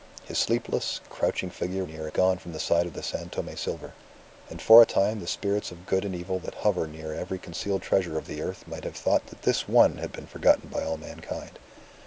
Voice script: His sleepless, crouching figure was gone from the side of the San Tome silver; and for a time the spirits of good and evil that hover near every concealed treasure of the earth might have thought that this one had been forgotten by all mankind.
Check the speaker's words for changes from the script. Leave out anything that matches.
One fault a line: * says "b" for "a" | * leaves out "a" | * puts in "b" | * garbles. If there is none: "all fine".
* says "near" for "was"